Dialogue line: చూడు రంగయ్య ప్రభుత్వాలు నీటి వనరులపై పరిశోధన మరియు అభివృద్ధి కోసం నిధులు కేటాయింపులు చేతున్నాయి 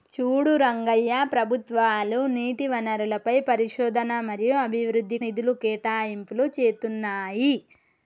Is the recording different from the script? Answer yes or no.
yes